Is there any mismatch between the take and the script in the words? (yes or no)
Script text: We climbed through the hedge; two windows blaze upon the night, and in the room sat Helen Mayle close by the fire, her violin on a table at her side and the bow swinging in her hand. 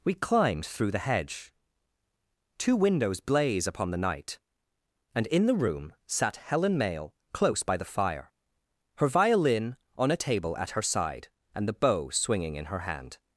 no